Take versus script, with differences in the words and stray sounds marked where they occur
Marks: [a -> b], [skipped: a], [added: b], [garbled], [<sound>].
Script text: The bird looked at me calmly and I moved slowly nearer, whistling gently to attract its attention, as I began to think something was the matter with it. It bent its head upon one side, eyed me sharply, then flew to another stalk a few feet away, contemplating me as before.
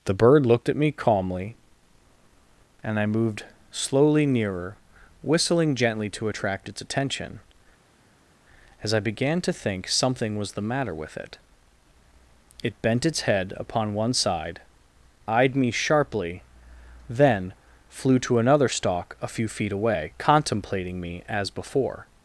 The bird looked at me calmly and I moved slowly nearer, whistling gently to attract its attention, as I began to think something was the matter with it. It bent its head upon one side, eyed me sharply, then flew to another stalk a few feet away, contemplating me as before.